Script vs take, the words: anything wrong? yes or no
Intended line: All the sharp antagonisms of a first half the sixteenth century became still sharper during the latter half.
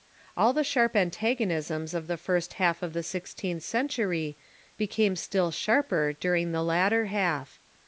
yes